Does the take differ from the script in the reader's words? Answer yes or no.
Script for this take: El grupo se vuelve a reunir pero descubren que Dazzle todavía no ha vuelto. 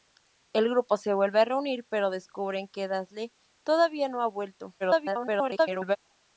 yes